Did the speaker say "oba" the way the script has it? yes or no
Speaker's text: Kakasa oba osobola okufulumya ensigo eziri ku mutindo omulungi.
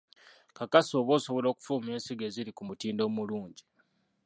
yes